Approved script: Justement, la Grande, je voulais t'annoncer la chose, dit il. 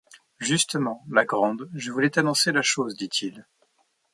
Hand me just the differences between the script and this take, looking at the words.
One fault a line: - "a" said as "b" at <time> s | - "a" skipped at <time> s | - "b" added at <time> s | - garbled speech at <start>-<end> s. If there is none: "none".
none